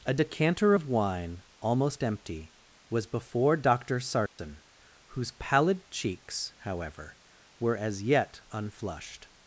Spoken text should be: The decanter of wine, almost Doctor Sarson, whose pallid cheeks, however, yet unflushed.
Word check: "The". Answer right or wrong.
wrong